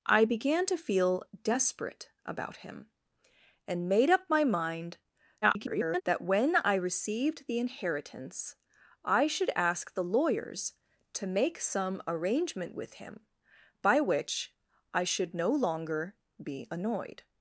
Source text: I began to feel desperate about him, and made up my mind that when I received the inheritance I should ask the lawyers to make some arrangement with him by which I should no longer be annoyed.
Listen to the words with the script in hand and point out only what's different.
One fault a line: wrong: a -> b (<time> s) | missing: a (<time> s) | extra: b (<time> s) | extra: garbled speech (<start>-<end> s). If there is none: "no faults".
extra: garbled speech (5.4-6.0 s)